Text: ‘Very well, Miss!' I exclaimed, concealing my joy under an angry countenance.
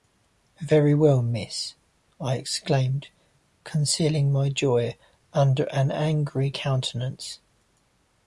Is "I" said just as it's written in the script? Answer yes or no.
yes